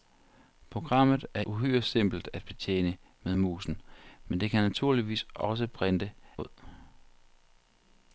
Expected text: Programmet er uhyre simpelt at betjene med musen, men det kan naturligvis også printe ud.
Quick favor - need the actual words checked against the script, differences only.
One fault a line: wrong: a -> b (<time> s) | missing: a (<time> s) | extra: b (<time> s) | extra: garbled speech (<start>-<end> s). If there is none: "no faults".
no faults